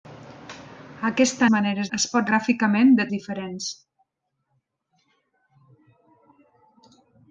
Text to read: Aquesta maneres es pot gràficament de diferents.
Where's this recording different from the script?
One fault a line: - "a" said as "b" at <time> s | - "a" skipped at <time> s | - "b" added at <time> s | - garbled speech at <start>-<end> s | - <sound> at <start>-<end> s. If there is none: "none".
none